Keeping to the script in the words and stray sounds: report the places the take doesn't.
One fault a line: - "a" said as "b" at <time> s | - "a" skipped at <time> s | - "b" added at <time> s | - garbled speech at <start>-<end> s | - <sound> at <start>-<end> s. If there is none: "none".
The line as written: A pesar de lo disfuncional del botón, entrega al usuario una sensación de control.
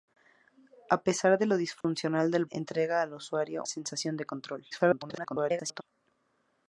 - dropout at 1.8-1.8 s
- "botón" skipped at 2.5 s
- "una" skipped at 3.6 s
- garbled speech at 4.7-5.8 s